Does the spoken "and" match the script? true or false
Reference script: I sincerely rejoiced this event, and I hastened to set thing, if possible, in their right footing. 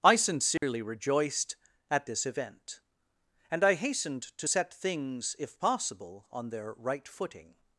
true